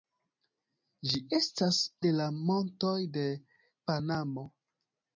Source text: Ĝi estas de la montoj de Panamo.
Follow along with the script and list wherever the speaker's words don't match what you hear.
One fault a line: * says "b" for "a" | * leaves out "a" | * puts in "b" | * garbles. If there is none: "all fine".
all fine